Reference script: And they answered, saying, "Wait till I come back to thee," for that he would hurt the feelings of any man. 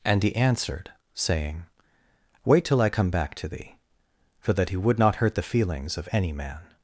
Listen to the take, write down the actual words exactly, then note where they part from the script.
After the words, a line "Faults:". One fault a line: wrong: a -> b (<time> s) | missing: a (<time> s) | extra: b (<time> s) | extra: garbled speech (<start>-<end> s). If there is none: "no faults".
And he answered, saying, "Wait till I come back to thee," for that he would not hurt the feelings of any man.
Faults:
wrong: they -> he (0.2 s)
extra: not (5.0 s)